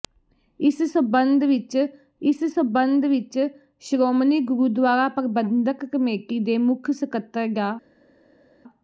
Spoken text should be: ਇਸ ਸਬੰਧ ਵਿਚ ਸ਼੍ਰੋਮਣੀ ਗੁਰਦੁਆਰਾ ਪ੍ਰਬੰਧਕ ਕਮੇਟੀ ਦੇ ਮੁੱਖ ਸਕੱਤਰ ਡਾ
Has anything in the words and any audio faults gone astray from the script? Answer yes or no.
yes